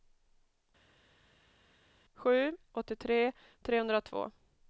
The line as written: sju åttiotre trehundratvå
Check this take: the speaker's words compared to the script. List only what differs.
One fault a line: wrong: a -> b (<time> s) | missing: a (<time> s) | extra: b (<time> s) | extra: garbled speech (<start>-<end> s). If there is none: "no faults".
no faults